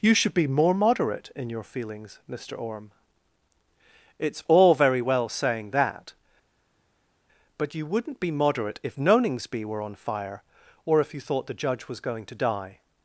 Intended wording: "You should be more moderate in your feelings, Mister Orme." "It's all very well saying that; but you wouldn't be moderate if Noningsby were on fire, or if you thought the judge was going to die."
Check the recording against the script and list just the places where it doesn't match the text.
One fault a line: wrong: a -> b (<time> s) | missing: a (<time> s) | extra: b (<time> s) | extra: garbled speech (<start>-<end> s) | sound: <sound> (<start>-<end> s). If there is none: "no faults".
no faults